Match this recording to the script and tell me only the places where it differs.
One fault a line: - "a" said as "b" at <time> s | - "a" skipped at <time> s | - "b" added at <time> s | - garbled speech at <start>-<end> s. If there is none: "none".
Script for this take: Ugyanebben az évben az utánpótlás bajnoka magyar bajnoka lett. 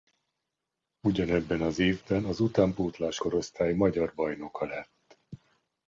- "bajnoka" said as "korosztály" at 3.2 s